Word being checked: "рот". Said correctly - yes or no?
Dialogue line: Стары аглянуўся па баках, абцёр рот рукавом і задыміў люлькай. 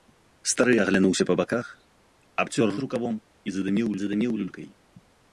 no